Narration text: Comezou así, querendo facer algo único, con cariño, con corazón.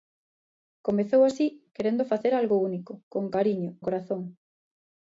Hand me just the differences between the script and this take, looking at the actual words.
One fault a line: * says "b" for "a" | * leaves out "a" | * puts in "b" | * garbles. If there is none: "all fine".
* leaves out "con"